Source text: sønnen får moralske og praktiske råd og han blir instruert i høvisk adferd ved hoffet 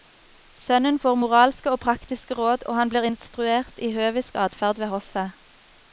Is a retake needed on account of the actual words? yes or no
no